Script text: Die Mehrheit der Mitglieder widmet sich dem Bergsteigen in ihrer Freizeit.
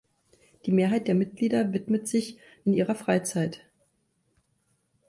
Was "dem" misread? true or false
true